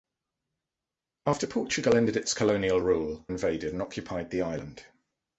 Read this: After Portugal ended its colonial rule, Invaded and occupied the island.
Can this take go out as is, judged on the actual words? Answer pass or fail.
pass